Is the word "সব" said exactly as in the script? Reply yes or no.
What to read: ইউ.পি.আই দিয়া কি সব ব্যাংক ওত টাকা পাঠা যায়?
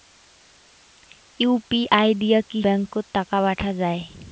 no